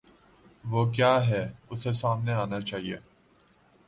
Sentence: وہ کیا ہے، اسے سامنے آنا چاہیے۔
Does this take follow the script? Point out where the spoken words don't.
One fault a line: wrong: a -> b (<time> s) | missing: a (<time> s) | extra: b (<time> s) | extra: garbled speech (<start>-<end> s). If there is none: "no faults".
no faults